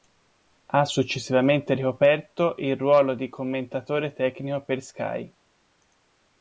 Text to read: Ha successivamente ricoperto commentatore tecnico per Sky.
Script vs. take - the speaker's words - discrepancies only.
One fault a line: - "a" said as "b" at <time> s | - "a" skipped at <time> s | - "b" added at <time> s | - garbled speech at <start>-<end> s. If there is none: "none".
- "il ruolo di" added at 2.6 s